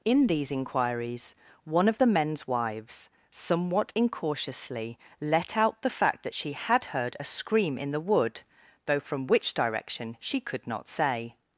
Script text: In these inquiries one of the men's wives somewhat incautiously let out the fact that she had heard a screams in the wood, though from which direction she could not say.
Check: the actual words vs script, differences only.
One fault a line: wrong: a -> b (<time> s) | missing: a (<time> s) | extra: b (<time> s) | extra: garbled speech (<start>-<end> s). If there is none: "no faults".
wrong: screams -> scream (7.2 s)